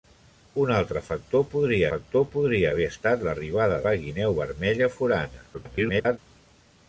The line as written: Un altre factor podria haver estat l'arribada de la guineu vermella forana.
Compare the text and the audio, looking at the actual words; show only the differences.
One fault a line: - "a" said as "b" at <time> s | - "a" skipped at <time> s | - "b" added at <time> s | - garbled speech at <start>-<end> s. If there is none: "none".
- "factor podria" added at 1.9 s
- "de" skipped at 3.8 s
- garbled speech at 5.5-6.2 s